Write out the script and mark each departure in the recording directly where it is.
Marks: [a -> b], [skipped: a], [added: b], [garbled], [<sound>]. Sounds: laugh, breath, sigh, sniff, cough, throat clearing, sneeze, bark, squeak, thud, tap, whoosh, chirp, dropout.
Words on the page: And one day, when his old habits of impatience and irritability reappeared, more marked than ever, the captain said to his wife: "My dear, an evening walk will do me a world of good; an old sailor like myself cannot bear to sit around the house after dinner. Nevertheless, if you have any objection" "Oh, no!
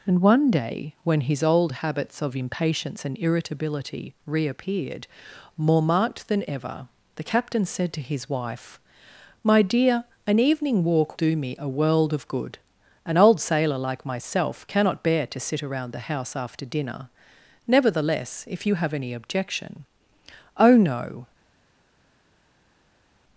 And one day, when his old habits of impatience and irritability reappeared, more marked than ever, the captain said to his wife: "My dear, an evening walk [skipped: will] do me a world of good; an old sailor like myself cannot bear to sit around the house after dinner. Nevertheless, if you have any objection" "Oh, no!